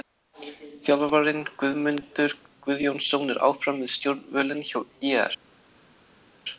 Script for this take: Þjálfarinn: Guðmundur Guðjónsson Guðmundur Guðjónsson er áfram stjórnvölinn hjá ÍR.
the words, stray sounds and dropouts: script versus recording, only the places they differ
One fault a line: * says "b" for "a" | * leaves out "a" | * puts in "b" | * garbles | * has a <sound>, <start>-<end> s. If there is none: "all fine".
* leaves out "Guðmundur Guðjónsson"
* puts in "við"